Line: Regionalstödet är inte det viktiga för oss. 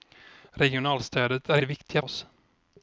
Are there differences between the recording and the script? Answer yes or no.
yes